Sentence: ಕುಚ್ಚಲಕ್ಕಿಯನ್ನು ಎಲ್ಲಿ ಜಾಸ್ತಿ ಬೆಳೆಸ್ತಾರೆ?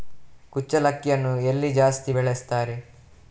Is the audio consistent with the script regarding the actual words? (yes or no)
yes